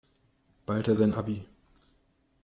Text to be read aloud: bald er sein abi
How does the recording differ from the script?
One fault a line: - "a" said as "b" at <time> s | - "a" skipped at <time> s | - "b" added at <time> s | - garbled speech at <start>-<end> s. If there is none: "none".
none